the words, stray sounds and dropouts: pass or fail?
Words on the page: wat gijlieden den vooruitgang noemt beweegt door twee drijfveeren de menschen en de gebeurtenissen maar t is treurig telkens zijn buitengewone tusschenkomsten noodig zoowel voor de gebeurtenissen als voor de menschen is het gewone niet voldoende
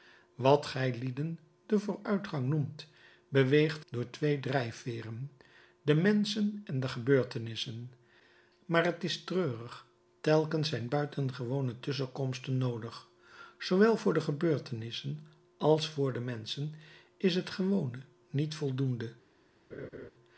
fail